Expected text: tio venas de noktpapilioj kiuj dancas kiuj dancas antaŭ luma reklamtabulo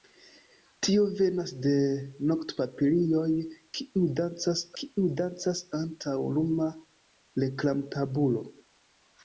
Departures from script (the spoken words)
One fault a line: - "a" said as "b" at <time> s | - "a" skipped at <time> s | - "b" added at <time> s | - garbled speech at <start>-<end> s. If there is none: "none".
none